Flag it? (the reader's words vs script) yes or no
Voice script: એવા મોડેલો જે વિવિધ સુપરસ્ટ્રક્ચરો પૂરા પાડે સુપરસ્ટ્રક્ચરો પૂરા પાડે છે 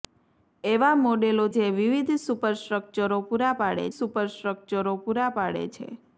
no